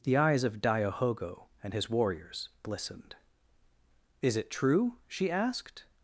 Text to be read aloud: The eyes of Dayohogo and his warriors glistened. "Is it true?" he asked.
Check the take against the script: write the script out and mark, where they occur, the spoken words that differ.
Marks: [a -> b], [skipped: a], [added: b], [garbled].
The eyes of Dayohogo and his warriors glistened. "Is it true?" [he -> she] asked.